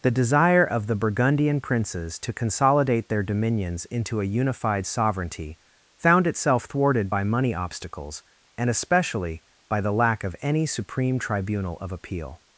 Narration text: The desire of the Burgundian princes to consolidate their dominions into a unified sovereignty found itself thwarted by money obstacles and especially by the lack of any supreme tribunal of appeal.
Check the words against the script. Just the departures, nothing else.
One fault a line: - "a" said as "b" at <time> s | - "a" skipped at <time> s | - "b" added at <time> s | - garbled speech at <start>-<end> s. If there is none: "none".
none